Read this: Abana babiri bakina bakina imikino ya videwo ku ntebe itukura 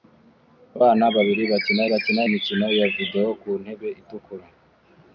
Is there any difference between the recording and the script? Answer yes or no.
no